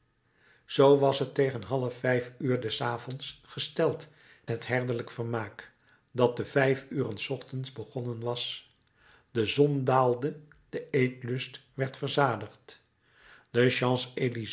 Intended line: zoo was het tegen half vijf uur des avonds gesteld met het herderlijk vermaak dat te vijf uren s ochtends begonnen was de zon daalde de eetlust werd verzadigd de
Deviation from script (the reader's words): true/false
true